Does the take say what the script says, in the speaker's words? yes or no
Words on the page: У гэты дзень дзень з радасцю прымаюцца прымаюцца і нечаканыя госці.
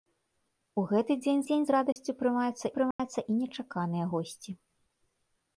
yes